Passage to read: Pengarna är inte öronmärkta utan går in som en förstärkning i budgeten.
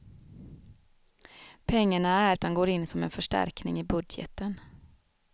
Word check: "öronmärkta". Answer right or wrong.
wrong